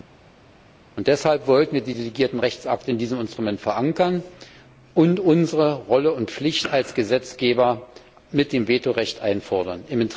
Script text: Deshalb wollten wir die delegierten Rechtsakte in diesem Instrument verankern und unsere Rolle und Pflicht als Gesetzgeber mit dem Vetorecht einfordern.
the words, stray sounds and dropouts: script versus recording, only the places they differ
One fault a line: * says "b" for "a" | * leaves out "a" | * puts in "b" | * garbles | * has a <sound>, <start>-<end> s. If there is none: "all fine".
all fine